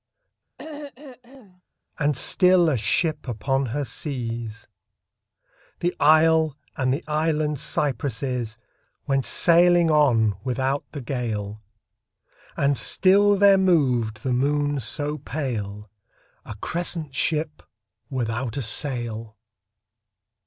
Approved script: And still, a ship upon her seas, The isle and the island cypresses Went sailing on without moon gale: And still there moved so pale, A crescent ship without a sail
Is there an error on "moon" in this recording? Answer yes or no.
yes